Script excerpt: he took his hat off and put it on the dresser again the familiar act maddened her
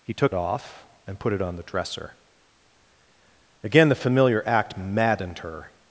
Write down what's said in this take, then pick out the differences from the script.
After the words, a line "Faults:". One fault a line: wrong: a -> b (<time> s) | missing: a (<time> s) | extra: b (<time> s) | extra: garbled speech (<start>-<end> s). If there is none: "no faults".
he took off and put it on the dresser again the familiar act maddened her
Faults:
missing: his hat (0.3 s)